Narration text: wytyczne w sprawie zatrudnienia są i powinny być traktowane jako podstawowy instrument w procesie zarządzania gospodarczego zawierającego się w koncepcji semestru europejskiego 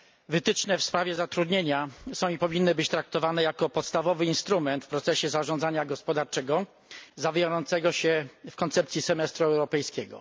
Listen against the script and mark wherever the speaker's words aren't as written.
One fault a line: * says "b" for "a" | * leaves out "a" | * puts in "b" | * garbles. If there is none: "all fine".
all fine